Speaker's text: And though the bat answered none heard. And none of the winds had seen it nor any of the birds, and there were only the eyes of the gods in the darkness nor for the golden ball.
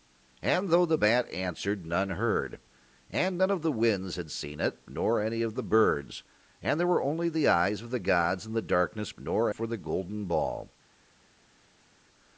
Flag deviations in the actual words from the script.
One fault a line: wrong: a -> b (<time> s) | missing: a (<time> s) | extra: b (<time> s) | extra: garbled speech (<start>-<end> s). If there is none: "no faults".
no faults